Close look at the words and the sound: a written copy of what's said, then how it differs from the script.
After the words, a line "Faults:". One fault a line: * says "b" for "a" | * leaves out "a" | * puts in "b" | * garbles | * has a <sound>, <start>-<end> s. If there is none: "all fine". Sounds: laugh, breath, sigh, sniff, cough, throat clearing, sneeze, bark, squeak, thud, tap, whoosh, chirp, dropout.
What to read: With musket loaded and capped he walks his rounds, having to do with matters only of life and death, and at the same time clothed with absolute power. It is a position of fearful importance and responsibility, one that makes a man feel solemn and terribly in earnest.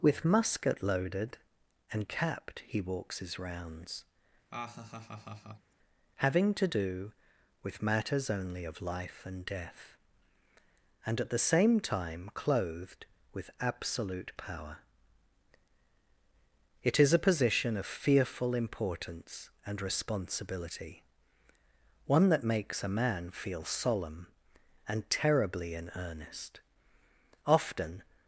With musket loaded and capped he walks his rounds, having to do with matters only of life and death, and at the same time clothed with absolute power. It is a position of fearful importance and responsibility, one that makes a man feel solemn and terribly in earnest. Often
Faults:
* has a laugh, 4.5-5.7 s
* puts in "Often"